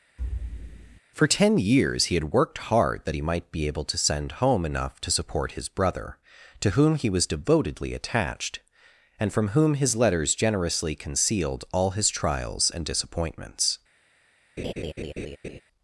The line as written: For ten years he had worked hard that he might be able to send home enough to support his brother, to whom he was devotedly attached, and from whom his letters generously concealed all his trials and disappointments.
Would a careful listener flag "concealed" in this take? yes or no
no